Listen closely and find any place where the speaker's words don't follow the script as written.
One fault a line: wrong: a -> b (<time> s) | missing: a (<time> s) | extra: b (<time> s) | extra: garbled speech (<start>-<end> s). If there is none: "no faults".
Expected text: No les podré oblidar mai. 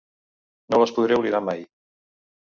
no faults